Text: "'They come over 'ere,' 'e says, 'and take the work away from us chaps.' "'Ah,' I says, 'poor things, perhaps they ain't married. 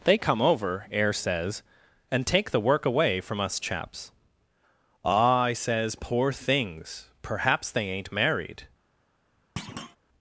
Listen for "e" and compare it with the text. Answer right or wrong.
wrong